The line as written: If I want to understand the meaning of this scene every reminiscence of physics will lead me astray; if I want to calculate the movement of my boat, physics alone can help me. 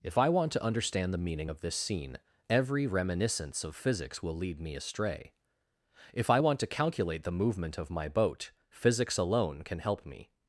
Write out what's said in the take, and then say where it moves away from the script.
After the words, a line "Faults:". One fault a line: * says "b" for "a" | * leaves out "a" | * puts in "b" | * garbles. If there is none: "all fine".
If I want to understand the meaning of this scene every reminiscence of physics will lead me astray; if I want to calculate the movement of my boat, physics alone can help me.
Faults:
all fine